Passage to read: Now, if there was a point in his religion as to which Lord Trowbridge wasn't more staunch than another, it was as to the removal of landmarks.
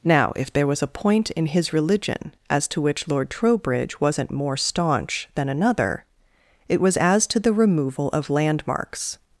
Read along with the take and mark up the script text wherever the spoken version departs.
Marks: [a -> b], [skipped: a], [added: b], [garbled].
Now, if there was a point in his religion as to which Lord Trowbridge wasn't more staunch than another, it was as to the removal of landmarks.